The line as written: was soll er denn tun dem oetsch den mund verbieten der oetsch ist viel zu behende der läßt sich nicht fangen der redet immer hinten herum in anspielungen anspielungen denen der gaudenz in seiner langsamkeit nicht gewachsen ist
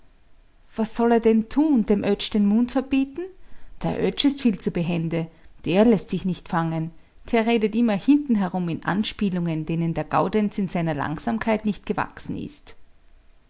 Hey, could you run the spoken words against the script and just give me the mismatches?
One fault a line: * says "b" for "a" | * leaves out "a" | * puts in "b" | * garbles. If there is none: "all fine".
* leaves out "anspielungen"